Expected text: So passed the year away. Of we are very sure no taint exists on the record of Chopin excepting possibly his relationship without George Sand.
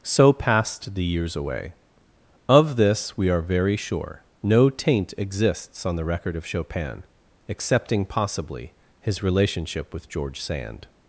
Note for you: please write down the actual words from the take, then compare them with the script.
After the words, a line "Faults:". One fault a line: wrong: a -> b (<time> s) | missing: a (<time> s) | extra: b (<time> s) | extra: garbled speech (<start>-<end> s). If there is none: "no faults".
So passed the years away. Of this we are very sure no taint exists on the record of Chopin excepting possibly his relationship with George Sand.
Faults:
wrong: year -> years (1.0 s)
extra: this (2.8 s)
wrong: without -> with (9.9 s)